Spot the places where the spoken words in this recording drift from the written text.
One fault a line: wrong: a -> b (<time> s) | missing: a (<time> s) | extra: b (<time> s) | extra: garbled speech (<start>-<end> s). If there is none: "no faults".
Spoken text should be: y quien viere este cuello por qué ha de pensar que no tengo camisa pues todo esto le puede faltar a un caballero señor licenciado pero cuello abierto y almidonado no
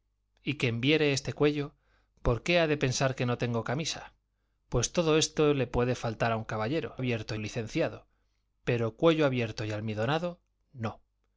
wrong: señor -> abierto (7.0 s)